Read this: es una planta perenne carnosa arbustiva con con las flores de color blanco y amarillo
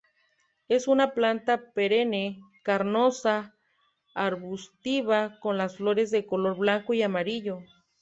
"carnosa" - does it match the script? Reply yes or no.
yes